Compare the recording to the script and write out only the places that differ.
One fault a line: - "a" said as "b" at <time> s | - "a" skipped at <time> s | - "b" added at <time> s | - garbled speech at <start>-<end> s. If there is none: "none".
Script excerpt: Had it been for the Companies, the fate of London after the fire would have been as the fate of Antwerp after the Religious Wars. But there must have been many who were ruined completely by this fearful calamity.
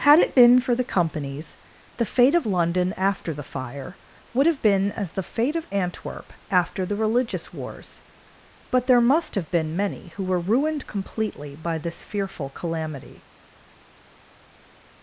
none